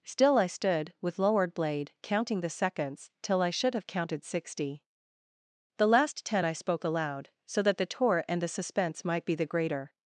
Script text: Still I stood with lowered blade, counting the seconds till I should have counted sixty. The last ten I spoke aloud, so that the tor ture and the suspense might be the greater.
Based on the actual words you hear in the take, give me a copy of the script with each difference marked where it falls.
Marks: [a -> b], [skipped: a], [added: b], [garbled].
Still I stood with lowered blade, counting the seconds till I should have counted sixty. The last ten I spoke aloud, so that the [tor ture -> tour] and the suspense might be the greater.